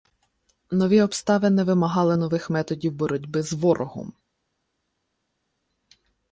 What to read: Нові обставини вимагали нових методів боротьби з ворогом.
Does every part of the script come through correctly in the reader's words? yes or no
yes